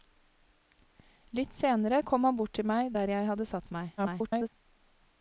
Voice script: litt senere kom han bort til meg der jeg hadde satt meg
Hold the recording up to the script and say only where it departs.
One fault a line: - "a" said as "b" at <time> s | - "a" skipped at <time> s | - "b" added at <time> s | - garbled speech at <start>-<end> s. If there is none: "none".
- garbled speech at 4.0-4.5 s